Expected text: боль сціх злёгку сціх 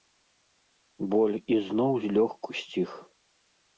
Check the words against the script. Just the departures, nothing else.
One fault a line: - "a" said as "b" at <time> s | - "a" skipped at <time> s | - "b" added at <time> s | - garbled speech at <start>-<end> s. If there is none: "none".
- "сціх" said as "ізноў" at 1.6 s